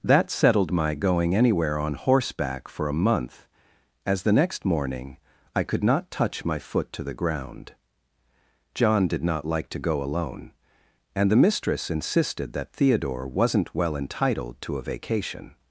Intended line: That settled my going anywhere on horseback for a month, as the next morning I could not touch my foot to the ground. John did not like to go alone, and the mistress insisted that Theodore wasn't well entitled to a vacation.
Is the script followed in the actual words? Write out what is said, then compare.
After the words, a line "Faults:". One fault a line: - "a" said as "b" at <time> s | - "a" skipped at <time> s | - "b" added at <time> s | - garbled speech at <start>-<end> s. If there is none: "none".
That settled my going anywhere on horseback for a month, as the next morning I could not touch my foot to the ground. John did not like to go alone, and the mistress insisted that Theodore wasn't well entitled to a vacation.
Faults:
none